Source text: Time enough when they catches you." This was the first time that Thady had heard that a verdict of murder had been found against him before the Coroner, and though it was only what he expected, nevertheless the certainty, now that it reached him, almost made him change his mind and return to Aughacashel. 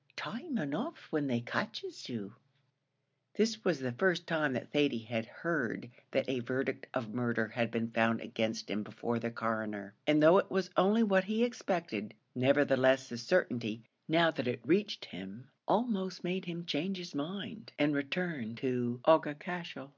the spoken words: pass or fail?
pass